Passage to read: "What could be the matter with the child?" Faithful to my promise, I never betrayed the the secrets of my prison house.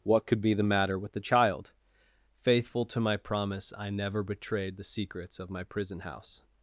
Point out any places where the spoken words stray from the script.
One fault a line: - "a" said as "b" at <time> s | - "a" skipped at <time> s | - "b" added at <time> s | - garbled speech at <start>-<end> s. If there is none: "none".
- "the" skipped at 4.9 s